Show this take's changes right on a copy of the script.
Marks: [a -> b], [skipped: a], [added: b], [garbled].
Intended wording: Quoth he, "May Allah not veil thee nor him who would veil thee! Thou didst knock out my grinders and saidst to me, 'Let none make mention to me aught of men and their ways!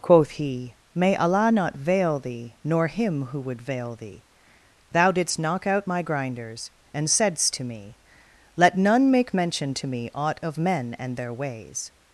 Quoth he, "May Allah not veil thee nor him who would veil thee! Thou didst knock out my grinders and saidst to me, 'Let none make mention to me aught of men and their ways!